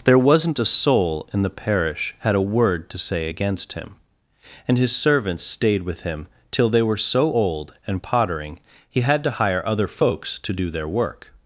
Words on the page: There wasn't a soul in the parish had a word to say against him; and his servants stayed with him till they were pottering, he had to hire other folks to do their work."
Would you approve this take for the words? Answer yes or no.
no